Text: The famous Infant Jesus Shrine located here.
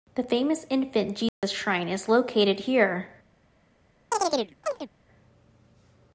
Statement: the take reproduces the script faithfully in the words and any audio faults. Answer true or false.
false